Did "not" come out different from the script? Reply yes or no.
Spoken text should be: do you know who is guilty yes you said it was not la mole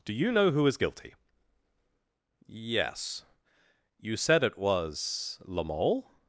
yes